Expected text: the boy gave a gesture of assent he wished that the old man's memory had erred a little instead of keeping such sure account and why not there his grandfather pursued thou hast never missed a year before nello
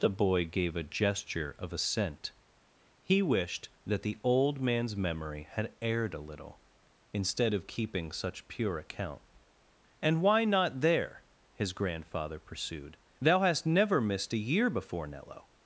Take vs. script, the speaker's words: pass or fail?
fail